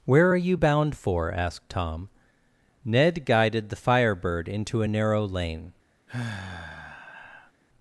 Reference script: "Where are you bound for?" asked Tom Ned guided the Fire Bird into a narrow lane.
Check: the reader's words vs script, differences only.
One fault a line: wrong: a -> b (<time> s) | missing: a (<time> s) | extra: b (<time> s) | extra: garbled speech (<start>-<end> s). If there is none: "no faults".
no faults